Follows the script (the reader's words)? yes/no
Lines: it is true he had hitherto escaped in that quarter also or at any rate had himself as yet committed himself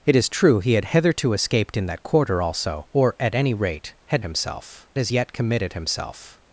yes